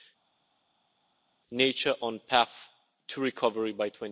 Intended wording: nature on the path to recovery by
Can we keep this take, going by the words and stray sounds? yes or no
yes